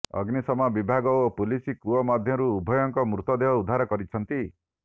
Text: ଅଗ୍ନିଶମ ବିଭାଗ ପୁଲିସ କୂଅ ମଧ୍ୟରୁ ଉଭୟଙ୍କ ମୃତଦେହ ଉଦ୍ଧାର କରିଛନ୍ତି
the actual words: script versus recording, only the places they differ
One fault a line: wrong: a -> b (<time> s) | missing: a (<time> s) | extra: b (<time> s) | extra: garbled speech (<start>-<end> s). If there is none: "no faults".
extra: ଓ (1.2 s)